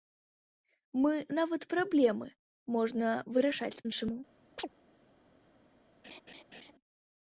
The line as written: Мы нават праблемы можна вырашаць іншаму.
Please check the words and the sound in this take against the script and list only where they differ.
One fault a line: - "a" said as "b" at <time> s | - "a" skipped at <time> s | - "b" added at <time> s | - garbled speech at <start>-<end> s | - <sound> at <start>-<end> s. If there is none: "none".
- chirp at 4.6-4.7 s
- laugh at 6.0-6.7 s